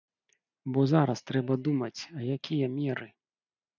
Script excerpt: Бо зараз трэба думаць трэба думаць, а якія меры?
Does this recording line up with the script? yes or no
no